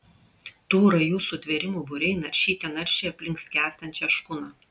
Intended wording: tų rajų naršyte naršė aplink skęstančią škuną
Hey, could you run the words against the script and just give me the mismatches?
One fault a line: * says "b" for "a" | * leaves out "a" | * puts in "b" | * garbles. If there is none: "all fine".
* puts in "sutvėrimų būriai"